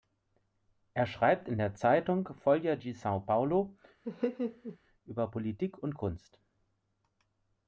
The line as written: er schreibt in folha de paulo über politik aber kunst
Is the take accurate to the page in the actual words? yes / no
no